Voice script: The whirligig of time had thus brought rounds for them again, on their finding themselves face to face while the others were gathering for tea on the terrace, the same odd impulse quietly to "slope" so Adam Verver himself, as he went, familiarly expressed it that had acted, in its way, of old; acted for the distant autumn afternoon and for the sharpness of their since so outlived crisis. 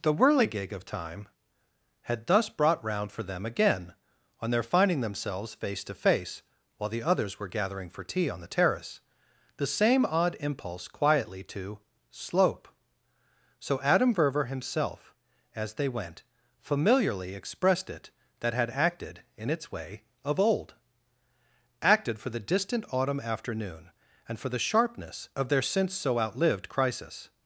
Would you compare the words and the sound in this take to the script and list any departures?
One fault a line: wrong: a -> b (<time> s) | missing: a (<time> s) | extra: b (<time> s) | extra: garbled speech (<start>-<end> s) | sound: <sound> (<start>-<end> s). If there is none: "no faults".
wrong: rounds -> round (2.8 s)
wrong: he -> they (15.8 s)